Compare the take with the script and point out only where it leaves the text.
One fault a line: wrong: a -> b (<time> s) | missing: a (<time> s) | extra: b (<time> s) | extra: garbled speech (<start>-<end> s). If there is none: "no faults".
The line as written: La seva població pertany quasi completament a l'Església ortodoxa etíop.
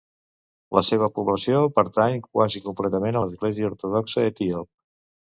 no faults